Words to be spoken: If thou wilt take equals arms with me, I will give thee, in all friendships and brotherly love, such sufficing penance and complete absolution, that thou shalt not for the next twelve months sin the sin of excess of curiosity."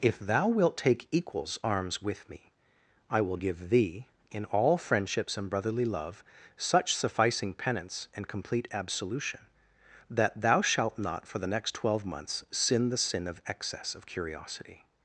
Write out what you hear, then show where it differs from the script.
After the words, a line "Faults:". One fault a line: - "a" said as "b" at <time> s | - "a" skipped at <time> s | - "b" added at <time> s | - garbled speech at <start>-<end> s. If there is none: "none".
If thou wilt take equals arms with me, I will give thee, in all friendships and brotherly love, such sufficing penance and complete absolution, that thou shalt not for the next twelve months sin the sin of excess of curiosity."
Faults:
none